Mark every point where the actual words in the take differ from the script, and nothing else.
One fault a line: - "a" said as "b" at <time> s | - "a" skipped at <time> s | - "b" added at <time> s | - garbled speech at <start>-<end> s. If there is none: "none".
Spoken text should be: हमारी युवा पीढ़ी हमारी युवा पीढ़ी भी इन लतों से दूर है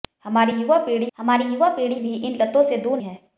none